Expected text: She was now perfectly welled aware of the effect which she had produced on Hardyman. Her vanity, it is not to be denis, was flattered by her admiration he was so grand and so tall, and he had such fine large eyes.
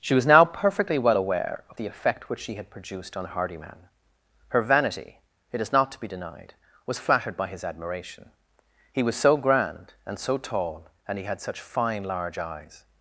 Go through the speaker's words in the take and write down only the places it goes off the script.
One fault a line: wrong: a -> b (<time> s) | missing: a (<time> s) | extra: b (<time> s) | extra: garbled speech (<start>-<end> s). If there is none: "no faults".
wrong: welled -> well (1.0 s)
wrong: denis -> denied (6.1 s)
wrong: her -> his (7.5 s)